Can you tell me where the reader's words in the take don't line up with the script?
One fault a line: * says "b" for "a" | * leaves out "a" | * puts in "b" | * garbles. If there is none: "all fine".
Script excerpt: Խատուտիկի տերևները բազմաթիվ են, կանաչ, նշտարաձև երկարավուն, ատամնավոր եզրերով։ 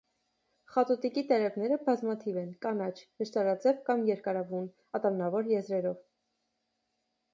* puts in "կամ"